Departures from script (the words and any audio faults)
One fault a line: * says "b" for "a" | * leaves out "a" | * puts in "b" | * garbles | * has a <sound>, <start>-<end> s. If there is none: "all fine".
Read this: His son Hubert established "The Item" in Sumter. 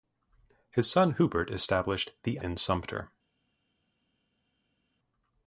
* leaves out "Item"